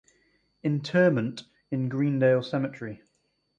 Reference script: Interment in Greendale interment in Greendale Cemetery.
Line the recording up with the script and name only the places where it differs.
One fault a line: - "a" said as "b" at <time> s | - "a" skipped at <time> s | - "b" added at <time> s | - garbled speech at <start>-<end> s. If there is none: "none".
- "interment in Greendale" skipped at 2.4 s